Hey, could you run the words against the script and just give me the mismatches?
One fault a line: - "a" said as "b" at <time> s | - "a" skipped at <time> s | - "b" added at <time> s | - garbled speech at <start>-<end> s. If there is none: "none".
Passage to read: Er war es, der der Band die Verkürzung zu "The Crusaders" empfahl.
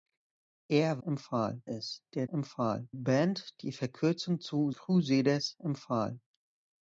- "war" said as "empfahl" at 1.0 s
- "der" said as "empfahl" at 2.3 s
- "The" skipped at 4.7 s